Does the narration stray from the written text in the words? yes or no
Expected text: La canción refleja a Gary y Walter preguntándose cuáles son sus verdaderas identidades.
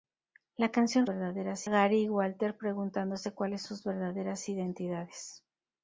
yes